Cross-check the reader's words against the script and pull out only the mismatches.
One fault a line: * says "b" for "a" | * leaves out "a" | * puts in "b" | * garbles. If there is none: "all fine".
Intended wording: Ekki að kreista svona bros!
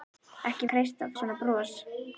all fine